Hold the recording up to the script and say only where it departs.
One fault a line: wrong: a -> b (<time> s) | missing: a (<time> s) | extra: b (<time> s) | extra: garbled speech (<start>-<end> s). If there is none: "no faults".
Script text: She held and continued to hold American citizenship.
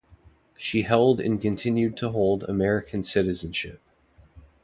no faults